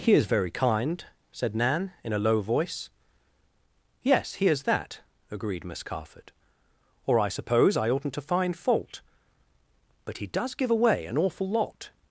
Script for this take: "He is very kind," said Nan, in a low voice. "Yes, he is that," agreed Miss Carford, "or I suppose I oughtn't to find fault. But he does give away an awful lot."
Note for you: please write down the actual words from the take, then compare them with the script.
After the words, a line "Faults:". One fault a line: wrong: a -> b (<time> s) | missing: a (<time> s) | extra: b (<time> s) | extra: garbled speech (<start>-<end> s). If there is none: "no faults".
"He is very kind," said Nan, in a low voice. "Yes, he is that," agreed Miss Carford, "or I suppose I oughtn't to find fault. But he does give away an awful lot."
Faults:
no faults